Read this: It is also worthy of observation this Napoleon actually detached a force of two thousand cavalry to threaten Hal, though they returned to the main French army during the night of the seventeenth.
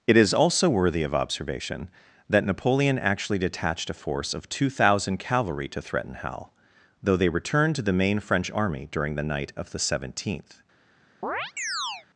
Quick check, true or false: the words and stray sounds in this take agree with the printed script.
false